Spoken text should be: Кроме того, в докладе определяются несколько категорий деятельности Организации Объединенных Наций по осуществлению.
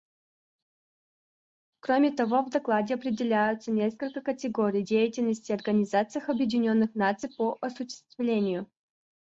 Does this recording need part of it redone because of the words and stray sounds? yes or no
no